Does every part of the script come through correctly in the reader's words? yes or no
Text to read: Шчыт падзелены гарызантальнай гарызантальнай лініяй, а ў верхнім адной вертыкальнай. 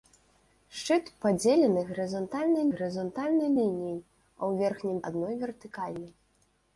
yes